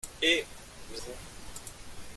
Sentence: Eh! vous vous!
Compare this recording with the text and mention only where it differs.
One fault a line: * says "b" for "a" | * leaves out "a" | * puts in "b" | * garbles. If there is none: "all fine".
all fine